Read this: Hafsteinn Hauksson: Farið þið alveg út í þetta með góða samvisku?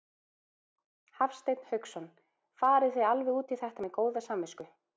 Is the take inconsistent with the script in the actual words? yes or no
no